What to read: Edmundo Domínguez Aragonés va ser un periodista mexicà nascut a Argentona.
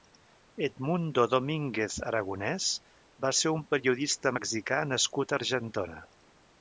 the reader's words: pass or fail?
pass